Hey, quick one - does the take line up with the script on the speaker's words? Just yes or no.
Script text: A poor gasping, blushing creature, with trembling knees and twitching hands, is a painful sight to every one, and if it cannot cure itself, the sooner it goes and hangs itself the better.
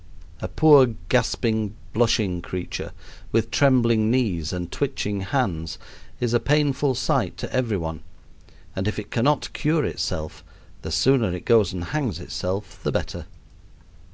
yes